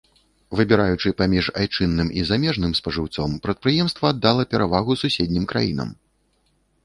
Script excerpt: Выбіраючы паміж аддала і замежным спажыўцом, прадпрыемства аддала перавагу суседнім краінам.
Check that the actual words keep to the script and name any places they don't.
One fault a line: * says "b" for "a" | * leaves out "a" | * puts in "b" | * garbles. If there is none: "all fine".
* says "айчынным" for "аддала"